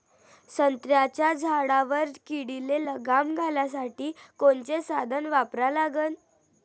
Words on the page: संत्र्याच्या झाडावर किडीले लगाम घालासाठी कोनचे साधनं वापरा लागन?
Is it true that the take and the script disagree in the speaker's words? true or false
false